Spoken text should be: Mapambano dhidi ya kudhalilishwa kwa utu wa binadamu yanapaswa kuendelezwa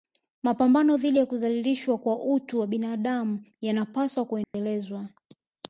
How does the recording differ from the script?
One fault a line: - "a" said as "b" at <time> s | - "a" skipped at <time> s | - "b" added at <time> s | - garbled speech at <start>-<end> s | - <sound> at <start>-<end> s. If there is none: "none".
- dropout at 4.4-4.5 s